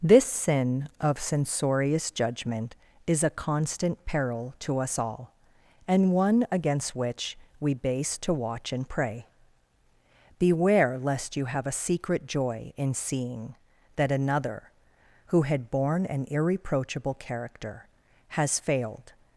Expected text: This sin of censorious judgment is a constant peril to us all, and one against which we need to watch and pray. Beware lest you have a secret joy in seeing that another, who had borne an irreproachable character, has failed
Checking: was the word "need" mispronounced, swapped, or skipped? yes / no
yes